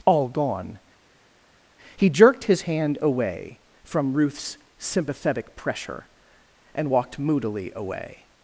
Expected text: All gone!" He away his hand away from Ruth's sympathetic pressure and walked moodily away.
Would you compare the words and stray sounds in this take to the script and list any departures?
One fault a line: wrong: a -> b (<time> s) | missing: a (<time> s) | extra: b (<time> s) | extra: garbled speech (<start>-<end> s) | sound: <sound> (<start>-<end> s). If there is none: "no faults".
wrong: away -> jerked (2.1 s)